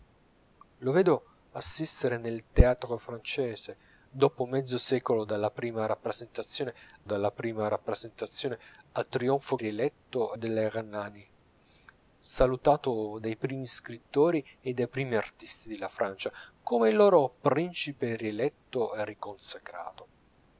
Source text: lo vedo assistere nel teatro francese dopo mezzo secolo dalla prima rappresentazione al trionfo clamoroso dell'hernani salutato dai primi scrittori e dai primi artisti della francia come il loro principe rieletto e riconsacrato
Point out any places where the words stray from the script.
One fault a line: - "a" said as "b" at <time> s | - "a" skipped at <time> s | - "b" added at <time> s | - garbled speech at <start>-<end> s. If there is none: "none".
- "dalla prima rappresentazione" added at 7.1 s
- "clamoroso" said as "rieletto" at 9.6 s